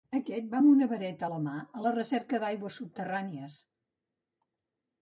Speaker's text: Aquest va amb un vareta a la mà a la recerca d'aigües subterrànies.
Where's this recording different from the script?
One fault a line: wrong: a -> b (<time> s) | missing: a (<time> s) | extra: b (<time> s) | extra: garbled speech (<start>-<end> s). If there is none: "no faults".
wrong: un -> una (0.7 s)